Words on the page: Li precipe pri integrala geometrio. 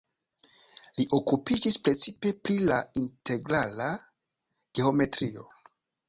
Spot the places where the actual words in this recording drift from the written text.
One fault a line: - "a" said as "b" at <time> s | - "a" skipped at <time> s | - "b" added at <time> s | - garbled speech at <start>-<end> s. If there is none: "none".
- "okupiĝis" added at 1.2 s
- "la" added at 2.7 s